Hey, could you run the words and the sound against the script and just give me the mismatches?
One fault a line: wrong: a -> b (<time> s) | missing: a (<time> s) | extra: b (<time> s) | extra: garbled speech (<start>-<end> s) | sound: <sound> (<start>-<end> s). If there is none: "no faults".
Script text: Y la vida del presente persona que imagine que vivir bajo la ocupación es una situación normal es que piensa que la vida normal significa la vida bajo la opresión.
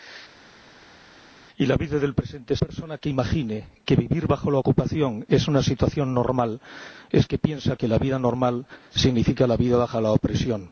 no faults